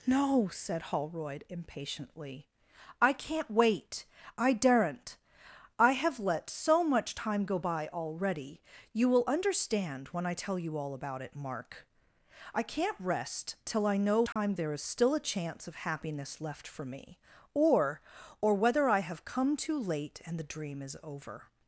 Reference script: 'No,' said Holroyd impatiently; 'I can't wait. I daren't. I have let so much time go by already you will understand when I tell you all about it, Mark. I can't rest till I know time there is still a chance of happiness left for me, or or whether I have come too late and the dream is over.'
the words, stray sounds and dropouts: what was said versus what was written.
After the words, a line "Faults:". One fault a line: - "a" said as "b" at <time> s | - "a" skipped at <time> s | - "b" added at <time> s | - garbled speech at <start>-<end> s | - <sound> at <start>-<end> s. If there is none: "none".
'No,' said Holroyd impatiently; 'I can't wait. I daren't. I have let so much time go by already you will understand when I tell you all about it, Mark. I can't rest till I know time there is still a chance of happiness left for me, or or whether I have come too late and the dream is over.'
Faults:
- dropout at 14.3-14.4 s